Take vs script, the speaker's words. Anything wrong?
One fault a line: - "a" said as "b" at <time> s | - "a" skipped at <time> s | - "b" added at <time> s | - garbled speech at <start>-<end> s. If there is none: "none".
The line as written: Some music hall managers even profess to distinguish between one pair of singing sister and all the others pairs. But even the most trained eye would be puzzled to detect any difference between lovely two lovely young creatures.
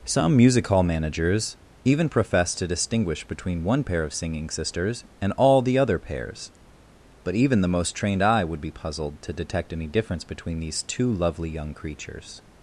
- "sister" said as "sisters" at 4.5 s
- "others" said as "other" at 5.8 s
- "lovely" said as "these" at 10.6 s